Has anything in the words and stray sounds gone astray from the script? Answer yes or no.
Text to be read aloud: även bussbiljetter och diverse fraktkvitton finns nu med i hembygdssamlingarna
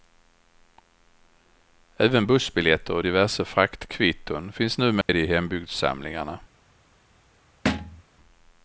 yes